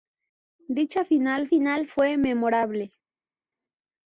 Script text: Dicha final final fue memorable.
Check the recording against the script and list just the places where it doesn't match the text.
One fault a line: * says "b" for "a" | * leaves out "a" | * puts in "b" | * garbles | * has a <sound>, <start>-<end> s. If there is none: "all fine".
all fine